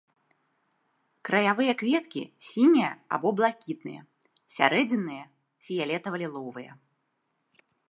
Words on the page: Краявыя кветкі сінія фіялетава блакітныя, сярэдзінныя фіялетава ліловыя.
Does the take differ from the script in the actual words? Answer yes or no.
yes